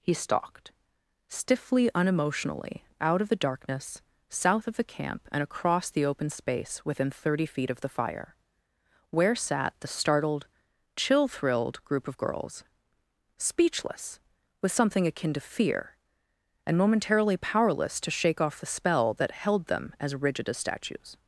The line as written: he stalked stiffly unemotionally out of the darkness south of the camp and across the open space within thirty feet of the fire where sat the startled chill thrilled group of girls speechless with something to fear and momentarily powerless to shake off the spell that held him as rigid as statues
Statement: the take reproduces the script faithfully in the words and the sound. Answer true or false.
false